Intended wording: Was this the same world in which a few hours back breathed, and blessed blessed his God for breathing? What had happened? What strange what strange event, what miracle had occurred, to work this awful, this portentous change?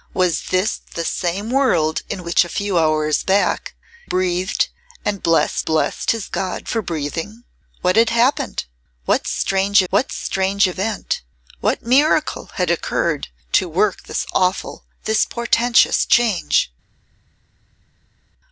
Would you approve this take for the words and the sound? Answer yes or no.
yes